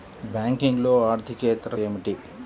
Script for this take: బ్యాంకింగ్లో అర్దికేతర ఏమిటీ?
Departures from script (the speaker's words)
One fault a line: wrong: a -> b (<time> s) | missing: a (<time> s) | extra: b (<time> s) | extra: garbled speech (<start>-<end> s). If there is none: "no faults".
no faults